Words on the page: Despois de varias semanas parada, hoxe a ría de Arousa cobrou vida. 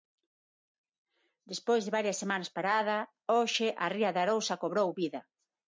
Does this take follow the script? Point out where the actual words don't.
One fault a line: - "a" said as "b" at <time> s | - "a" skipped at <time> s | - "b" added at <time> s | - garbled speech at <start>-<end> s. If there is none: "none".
none